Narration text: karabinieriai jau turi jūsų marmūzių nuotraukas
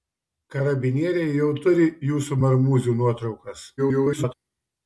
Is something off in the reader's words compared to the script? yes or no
yes